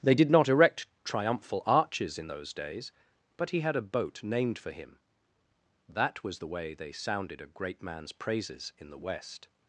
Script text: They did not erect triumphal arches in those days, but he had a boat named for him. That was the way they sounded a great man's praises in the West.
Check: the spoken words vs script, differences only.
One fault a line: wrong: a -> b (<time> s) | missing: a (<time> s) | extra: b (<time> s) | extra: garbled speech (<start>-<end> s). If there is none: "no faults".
no faults